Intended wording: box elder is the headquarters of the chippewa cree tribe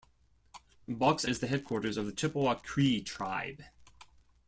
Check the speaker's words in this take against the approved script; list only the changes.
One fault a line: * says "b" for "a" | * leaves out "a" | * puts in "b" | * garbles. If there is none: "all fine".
* leaves out "elder"